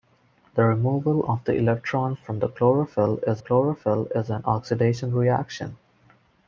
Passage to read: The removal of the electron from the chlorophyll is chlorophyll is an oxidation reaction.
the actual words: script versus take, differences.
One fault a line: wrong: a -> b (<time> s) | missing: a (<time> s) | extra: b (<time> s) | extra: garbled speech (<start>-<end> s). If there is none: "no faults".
no faults